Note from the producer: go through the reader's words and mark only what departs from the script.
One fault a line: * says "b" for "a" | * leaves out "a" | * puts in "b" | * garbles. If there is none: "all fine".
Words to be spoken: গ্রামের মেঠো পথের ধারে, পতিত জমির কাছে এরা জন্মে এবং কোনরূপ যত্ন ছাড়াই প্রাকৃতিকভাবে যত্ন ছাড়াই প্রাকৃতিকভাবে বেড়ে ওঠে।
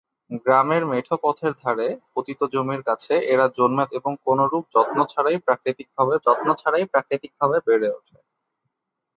all fine